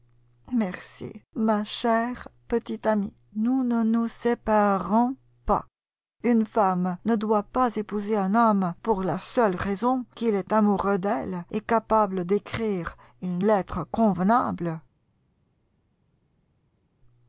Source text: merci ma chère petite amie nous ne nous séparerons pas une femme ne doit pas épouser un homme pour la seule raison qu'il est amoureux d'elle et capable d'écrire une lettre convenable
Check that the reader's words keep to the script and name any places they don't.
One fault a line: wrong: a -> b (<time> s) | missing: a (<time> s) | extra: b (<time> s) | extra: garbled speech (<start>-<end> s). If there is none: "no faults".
no faults